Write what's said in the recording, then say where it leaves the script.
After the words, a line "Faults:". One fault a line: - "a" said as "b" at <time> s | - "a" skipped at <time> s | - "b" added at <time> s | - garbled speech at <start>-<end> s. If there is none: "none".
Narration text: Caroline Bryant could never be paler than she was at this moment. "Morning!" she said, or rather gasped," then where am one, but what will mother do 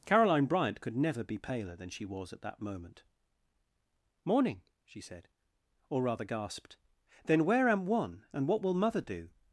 Caroline Bryant could never be paler than she was at that moment. "Morning!" she said, or rather gasped," then where am one, and what will mother do
Faults:
- "this" said as "that" at 2.4 s
- "but" said as "and" at 8.3 s